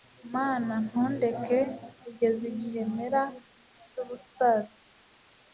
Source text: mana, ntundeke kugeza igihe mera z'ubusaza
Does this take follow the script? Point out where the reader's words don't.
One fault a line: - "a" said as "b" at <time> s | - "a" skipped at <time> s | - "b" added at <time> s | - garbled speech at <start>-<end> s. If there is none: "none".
none